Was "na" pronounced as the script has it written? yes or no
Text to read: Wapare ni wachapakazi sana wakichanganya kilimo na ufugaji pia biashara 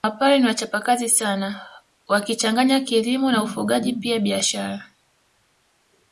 yes